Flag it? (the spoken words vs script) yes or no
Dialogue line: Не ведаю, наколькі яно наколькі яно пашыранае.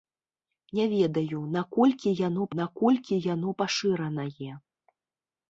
no